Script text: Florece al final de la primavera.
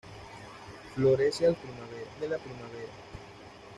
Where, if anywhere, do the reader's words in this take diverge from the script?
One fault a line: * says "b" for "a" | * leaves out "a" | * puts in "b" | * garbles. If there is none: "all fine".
* says "primavera" for "final"